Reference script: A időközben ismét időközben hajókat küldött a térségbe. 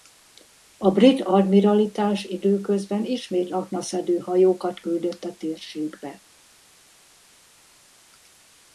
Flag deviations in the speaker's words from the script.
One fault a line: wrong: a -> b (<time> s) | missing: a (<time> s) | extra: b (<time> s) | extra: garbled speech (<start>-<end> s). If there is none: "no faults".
extra: brit admiralitás (0.9 s)
wrong: időközben -> aknaszedő (3.5 s)